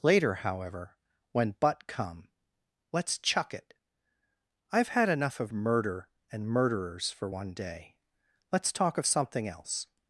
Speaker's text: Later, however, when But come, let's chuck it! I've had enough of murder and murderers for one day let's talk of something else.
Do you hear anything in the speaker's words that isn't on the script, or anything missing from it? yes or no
no